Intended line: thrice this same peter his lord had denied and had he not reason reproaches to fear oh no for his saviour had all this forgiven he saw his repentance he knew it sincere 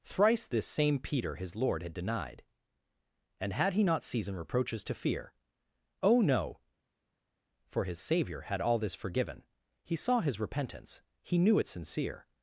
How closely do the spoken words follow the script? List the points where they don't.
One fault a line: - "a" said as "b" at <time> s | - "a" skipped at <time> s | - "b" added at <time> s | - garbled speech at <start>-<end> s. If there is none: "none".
- "reason" said as "season" at 4.0 s